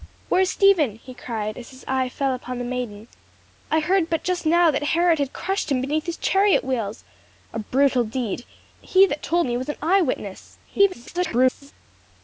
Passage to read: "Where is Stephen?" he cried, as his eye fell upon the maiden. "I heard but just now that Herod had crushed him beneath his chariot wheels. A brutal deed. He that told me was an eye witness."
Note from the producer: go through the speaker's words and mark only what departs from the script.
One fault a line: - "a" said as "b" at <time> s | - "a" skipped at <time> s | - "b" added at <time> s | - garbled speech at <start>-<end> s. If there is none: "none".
- garbled speech at 10.7-11.7 s